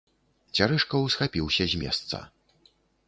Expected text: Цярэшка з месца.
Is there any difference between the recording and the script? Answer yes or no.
yes